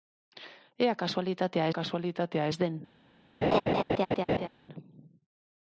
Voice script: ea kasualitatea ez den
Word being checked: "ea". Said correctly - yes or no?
yes